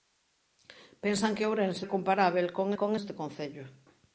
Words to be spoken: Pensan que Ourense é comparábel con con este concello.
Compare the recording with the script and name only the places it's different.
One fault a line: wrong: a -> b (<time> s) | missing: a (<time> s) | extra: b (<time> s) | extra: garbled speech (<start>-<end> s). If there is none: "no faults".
no faults